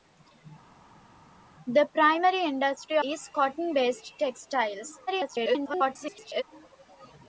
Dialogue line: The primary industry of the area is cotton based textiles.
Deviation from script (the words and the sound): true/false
true